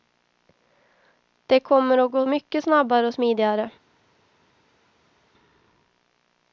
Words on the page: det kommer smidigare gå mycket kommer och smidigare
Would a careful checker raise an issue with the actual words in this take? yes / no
yes